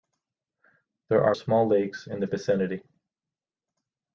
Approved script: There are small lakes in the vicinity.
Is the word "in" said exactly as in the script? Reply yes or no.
yes